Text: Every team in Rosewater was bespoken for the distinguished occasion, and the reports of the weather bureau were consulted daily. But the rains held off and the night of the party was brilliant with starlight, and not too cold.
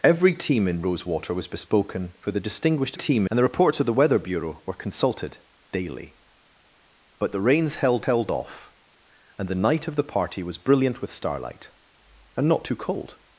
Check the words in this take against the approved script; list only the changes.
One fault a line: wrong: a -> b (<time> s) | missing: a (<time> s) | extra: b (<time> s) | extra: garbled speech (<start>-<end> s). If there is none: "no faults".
wrong: occasion -> team (2.9 s)
extra: held (8.0 s)